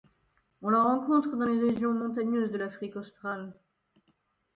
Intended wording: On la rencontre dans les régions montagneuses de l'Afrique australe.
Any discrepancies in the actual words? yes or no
no